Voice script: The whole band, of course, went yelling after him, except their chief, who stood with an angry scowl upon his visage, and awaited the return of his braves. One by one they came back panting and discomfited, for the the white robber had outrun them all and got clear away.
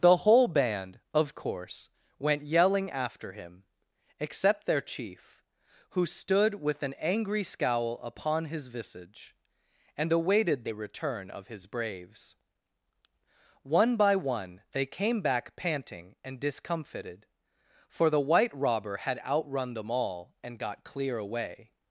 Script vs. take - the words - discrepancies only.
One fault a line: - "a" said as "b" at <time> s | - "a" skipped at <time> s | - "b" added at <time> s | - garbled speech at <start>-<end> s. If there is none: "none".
- "the" skipped at 18.2 s